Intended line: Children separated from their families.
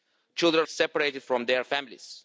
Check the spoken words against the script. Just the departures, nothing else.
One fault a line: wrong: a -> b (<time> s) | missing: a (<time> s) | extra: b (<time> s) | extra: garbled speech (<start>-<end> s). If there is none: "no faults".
no faults